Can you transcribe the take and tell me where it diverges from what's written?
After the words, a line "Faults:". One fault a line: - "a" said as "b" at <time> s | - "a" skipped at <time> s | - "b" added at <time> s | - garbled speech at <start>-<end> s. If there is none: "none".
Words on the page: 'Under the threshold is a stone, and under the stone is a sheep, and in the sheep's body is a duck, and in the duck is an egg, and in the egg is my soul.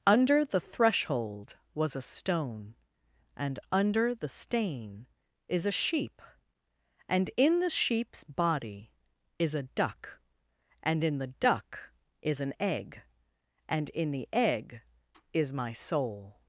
'Under the threshold was a stone, and under the stain is a sheep, and in the sheep's body is a duck, and in the duck is an egg, and in the egg is my soul.
Faults:
- "is" said as "was" at 1.8 s
- "stone" said as "stain" at 4.3 s